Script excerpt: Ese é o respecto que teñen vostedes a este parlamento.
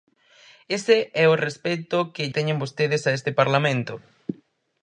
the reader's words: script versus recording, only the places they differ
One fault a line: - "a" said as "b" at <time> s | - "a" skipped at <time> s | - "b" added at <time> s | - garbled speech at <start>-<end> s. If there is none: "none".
none